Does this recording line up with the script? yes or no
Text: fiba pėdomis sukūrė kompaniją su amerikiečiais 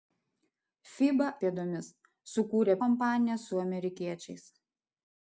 yes